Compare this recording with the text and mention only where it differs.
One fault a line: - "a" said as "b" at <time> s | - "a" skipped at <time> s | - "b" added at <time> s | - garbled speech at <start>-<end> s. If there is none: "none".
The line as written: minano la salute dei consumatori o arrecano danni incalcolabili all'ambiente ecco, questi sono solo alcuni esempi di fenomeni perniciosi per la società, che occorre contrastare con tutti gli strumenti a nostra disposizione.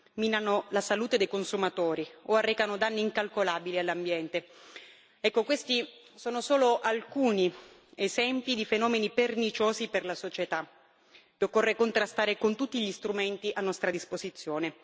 none